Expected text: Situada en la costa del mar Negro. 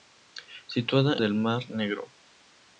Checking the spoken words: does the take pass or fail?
fail